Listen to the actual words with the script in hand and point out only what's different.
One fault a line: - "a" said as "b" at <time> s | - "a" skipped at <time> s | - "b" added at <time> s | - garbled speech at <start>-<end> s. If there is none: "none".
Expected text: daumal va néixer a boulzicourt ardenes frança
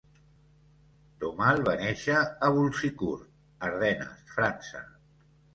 none